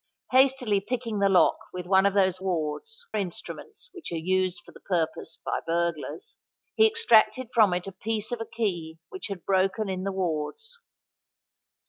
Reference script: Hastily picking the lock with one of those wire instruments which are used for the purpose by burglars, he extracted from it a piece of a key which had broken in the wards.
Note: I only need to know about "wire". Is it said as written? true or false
false